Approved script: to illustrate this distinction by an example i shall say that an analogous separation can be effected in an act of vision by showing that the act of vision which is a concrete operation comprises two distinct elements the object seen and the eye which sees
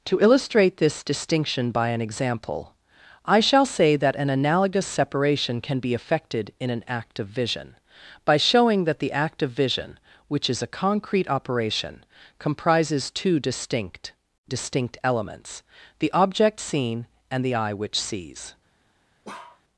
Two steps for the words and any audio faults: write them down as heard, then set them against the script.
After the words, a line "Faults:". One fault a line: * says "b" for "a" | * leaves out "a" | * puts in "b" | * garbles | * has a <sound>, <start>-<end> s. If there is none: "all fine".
to illustrate this distinction by an example i shall say that an analogous separation can be effected in an act of vision by showing that the act of vision which is a concrete operation comprises two distinct distinct elements the object seen and the eye which sees
Faults:
* puts in "distinct"
* has a bark, 19.2-19.6 s